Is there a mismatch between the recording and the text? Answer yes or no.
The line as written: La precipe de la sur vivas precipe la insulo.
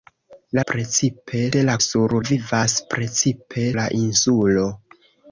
no